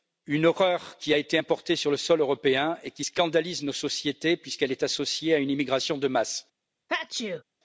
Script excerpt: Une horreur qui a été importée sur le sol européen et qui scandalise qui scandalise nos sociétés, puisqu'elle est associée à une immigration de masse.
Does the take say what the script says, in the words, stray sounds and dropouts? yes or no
no